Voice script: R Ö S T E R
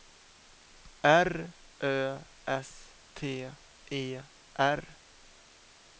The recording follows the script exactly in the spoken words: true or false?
true